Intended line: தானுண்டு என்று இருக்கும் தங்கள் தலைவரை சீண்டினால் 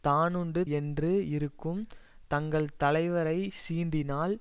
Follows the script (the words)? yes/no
yes